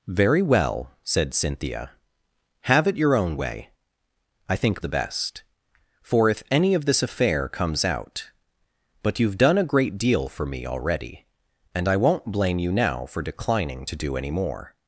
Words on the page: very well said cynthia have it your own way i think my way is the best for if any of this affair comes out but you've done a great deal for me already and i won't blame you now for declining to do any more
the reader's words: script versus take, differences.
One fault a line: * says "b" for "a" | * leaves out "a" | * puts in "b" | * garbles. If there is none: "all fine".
* leaves out "my way is"